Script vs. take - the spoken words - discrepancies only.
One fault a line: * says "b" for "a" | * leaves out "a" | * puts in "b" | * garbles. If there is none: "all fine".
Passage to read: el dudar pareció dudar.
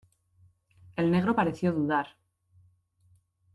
* says "negro" for "dudar"